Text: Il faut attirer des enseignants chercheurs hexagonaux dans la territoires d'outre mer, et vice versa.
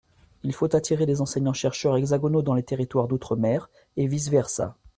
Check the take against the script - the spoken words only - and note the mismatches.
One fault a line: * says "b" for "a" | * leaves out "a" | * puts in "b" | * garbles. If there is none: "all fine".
* says "les" for "la"